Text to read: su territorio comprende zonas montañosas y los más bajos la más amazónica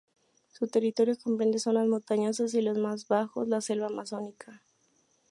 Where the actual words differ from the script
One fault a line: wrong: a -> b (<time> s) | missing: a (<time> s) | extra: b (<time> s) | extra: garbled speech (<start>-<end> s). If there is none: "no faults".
wrong: más -> selva (3.6 s)